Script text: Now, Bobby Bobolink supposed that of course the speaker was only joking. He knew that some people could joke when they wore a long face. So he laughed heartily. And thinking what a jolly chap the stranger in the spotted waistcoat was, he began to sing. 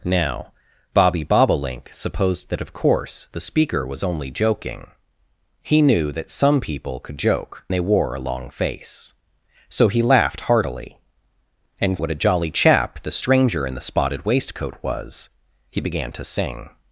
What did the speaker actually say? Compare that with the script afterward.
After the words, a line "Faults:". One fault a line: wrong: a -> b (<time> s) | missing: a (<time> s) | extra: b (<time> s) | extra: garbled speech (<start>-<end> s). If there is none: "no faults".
Now, Bobby Bobolink supposed that of course the speaker was only joking. He knew that some people could joke they wore a long face. So he laughed heartily. And what a jolly chap the stranger in the spotted waistcoat was, he began to sing.
Faults:
missing: when (7.7 s)
missing: thinking (12.0 s)